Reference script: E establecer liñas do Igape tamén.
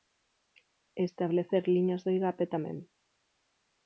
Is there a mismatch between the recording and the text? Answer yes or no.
no